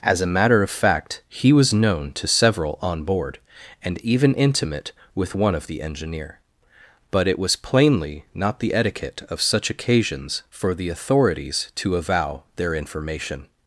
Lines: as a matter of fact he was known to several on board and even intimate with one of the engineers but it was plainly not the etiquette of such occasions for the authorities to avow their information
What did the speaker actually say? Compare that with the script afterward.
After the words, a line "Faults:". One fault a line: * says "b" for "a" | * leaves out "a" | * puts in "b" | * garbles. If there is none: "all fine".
as a matter of fact he was known to several on board and even intimate with one of the engineer but it was plainly not the etiquette of such occasions for the authorities to avow their information
Faults:
* says "engineer" for "engineers"